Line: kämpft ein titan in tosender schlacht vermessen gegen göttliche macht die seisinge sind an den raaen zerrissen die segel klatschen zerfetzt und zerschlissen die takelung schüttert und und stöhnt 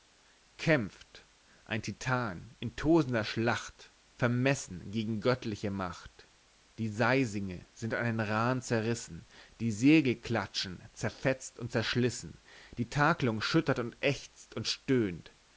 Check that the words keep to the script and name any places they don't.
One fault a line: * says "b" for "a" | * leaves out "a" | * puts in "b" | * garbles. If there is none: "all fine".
* puts in "ächzt"